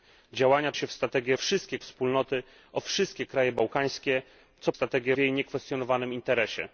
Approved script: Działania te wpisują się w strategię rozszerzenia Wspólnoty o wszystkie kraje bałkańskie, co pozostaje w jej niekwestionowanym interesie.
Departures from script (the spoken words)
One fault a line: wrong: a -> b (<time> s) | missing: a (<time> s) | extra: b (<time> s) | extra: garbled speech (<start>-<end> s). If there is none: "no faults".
missing: te wpisują (0.7 s)
wrong: rozszerzenia -> wszystkie (1.3 s)
wrong: pozostaje -> strategię (4.7 s)